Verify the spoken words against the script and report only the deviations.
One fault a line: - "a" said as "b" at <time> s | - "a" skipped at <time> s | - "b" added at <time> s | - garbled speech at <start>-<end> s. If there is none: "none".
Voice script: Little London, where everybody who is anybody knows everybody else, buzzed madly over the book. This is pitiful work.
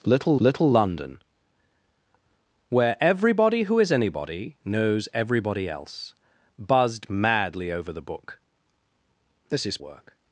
- "little" added at 0.4 s
- "pitiful" skipped at 9.8 s